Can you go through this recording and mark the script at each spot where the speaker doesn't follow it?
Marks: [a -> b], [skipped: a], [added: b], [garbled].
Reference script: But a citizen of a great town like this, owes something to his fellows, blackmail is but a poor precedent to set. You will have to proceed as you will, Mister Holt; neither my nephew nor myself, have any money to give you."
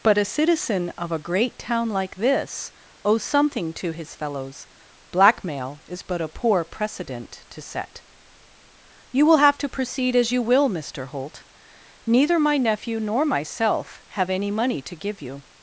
But a citizen of a great town like this, owes something to his fellows, blackmail is but a poor precedent to set. You will have to proceed as you will, Mister Holt; neither my nephew nor myself, have any money to give you."